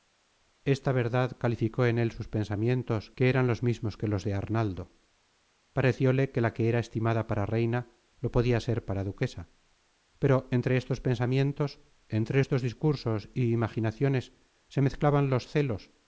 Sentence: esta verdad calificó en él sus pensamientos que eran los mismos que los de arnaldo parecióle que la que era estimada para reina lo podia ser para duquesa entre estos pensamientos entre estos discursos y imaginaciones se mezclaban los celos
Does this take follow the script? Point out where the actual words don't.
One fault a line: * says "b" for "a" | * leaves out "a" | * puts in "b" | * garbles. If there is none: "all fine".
* puts in "pero"